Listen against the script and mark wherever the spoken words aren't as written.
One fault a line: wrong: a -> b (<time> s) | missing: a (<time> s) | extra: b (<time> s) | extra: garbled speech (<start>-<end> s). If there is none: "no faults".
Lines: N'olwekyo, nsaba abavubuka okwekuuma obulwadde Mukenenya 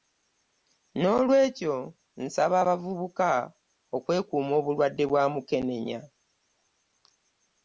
extra: bwa (5.1 s)